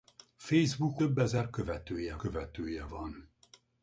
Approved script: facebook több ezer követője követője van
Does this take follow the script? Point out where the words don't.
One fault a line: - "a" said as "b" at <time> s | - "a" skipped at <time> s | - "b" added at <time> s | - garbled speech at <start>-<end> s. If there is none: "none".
none